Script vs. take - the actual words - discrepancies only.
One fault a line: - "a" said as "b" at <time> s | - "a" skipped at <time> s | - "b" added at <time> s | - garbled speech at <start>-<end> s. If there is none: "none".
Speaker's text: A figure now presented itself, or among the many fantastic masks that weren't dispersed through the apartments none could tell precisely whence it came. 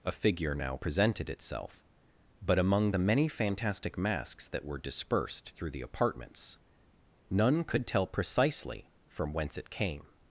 - "or" said as "but" at 2.4 s
- "weren't" said as "were" at 4.6 s
- "from" added at 9.0 s